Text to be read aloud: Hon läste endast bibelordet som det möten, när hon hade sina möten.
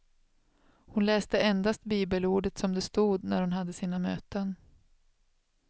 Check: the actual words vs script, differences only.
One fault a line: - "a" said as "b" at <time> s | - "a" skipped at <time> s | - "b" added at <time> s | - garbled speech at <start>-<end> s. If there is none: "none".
- "möten" said as "stod" at 2.8 s